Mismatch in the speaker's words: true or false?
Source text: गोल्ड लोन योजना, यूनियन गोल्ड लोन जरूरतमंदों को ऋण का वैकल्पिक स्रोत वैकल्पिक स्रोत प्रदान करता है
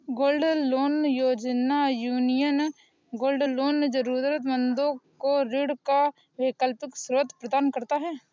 true